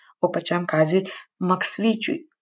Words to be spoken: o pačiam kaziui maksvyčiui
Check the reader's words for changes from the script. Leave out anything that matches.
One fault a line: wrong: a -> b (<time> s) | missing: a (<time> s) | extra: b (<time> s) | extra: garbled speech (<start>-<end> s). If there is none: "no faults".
no faults